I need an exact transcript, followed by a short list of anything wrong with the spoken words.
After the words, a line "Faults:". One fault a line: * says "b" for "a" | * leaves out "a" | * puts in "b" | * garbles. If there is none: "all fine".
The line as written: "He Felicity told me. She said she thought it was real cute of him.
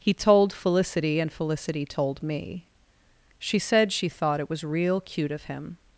"He told Felicity and Felicity told me. She said she thought it was real cute of him.
Faults:
* puts in "told Felicity and"